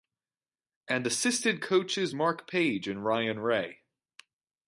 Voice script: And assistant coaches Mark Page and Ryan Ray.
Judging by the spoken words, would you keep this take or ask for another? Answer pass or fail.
pass